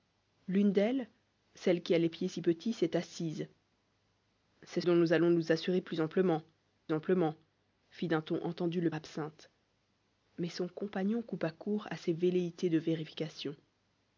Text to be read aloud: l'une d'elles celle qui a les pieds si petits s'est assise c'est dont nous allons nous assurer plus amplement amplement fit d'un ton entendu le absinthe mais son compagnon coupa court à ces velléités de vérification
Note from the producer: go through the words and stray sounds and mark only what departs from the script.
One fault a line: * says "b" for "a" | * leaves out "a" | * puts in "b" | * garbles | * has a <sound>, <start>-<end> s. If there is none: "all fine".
all fine